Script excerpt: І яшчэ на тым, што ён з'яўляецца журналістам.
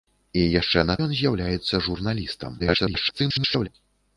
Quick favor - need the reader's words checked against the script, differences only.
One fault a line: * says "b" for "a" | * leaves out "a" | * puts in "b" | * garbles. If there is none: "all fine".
* leaves out "тым што"
* garbles